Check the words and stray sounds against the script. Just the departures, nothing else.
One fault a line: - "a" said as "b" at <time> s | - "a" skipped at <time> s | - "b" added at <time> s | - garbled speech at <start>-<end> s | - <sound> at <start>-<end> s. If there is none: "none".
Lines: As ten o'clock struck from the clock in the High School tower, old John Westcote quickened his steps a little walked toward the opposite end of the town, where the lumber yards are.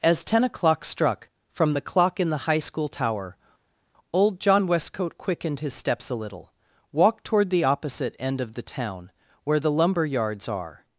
none